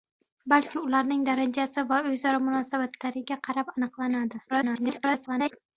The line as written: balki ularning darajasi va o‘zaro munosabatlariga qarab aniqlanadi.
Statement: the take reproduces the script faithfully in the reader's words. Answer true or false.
false